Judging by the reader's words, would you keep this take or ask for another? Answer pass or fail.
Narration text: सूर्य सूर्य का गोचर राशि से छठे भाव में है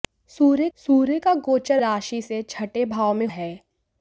pass